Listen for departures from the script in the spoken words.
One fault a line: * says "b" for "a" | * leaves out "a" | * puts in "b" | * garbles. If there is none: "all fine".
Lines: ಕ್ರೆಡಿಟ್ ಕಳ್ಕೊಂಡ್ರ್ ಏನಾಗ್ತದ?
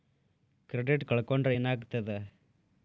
all fine